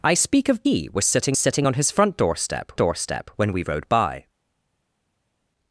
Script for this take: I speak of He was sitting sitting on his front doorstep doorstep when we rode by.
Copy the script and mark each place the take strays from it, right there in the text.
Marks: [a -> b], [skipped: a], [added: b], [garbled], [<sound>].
I speak of He was sitting sitting on his front doorstep doorstep when we rode by.